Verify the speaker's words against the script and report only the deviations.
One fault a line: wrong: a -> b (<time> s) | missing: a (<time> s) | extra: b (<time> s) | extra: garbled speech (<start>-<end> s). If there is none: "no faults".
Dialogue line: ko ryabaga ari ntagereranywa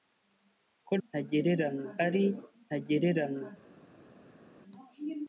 wrong: ryabaga -> ntagereranywa (1.1 s)